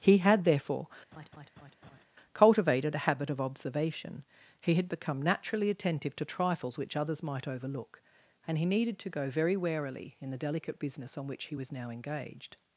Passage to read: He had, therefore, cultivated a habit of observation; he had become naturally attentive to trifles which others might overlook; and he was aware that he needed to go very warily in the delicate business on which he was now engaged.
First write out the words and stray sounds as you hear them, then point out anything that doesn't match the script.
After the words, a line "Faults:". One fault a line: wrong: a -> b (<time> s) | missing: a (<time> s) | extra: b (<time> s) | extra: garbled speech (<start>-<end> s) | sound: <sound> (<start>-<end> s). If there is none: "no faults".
He had, therefore, cultivated a habit of observation; he had become naturally attentive to trifles which others might overlook; and he needed to go very warily in the delicate business on which he was now engaged.
Faults:
sound: laugh (1.1-2.0 s)
missing: was aware that he (8.7 s)